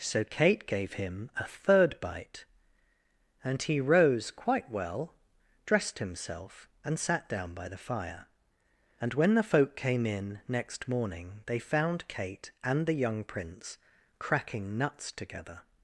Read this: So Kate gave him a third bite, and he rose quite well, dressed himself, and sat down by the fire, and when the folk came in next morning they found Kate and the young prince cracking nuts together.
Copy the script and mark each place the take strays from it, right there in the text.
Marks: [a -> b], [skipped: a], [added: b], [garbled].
So Kate gave him a third bite, and he rose quite well, dressed himself, and sat down by the fire, and when the folk came in next morning they found Kate and the young prince cracking nuts together.